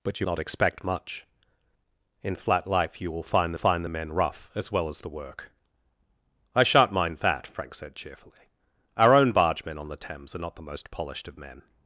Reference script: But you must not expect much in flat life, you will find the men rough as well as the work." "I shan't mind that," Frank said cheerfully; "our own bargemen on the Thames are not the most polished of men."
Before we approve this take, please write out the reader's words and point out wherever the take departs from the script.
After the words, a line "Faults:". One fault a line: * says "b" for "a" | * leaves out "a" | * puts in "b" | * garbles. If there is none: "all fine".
But you not expect much in flat life, you will find find the men rough as well as the work." "I shan't mind that," Frank said cheerfully; "our own bargemen on the Thames are not the most polished of men."
Faults:
* leaves out "must"
* puts in "find"